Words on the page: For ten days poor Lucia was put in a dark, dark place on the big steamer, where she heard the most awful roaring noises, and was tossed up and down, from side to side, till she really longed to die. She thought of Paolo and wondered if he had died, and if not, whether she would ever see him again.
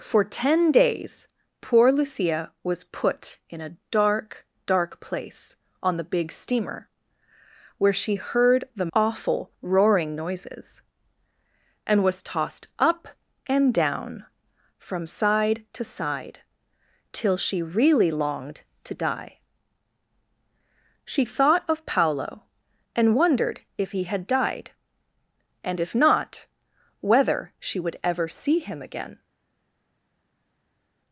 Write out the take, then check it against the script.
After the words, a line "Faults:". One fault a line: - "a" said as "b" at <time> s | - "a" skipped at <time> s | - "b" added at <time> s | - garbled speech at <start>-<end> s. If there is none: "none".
For ten days poor Lucia was put in a dark, dark place on the big steamer, where she heard the awful roaring noises, and was tossed up and down, from side to side, till she really longed to die. She thought of Paolo and wondered if he had died, and if not, whether she would ever see him again.
Faults:
- "most" skipped at 8.9 s